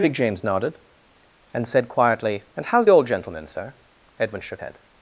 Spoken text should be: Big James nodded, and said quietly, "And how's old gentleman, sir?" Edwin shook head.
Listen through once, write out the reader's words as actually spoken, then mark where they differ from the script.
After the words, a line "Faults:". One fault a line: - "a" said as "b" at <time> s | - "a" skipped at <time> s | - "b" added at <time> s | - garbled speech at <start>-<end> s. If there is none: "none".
Big James nodded, and said quietly, "And how's old gentleman, sir?" Edwin shook head.
Faults:
none